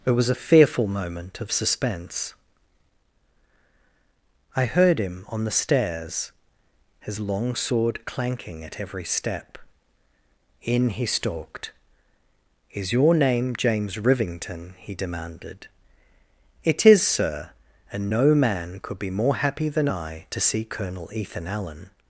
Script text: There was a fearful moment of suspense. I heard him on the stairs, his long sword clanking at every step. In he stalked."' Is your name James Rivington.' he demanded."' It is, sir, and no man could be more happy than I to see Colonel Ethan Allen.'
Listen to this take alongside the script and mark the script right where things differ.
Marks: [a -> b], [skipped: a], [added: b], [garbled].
[There -> It] was a fearful moment of suspense. I heard him on the stairs, his long sword clanking at every step. In he stalked."' Is your name James Rivington.' he demanded."' It is, sir, and no man could be more happy than I to see Colonel Ethan Allen.'